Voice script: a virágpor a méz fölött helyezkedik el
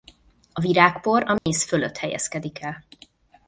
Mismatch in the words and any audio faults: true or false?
true